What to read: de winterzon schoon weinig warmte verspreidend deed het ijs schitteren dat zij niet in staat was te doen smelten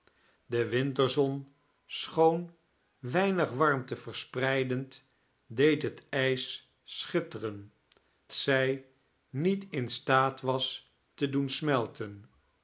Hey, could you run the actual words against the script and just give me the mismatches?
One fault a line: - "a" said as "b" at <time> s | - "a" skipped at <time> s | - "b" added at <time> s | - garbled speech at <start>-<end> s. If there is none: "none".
- "dat" skipped at 7.7 s